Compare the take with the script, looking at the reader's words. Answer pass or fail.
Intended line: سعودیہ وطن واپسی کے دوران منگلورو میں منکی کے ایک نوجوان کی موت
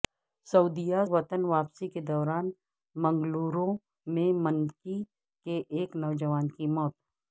pass